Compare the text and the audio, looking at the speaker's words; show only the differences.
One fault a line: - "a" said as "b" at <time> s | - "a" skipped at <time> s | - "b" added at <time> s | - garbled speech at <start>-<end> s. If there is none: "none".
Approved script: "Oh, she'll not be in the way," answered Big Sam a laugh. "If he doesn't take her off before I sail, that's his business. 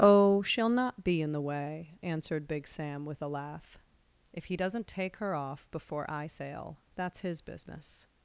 - "with" added at 3.0 s